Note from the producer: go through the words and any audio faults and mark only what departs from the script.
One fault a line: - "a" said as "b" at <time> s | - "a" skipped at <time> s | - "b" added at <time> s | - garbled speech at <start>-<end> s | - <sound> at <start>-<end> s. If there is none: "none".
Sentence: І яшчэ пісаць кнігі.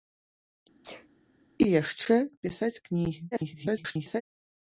- sneeze at 0.8-1.1 s
- garbled speech at 3.3-4.2 s